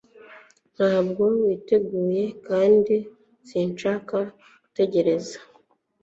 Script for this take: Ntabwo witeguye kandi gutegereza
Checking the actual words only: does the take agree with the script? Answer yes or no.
no